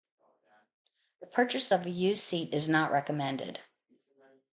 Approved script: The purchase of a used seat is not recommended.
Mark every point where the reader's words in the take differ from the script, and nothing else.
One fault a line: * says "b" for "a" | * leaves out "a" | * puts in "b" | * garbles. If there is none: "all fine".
all fine